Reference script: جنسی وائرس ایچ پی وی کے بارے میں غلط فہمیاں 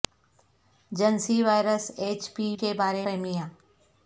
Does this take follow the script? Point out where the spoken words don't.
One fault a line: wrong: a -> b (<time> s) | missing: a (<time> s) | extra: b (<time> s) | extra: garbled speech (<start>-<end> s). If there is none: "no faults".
missing: وی (2.5 s)
missing: میں غلط (3.0 s)